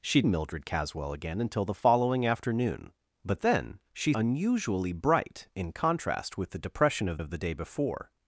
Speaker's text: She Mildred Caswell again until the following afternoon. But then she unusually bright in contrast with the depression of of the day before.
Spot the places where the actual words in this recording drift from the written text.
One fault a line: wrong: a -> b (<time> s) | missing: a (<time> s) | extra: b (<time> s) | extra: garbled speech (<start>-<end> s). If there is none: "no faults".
no faults